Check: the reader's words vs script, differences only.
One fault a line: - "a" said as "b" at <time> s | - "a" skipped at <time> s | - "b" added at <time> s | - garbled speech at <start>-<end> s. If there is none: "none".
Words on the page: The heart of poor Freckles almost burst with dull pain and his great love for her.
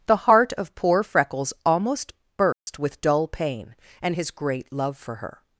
none